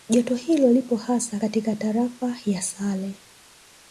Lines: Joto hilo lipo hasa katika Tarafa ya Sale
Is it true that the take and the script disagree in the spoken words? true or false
false